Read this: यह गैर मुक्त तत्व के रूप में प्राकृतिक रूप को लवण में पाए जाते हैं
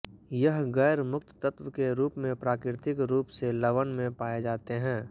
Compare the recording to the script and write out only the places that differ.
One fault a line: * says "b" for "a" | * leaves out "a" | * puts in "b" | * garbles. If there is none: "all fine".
* says "से" for "को"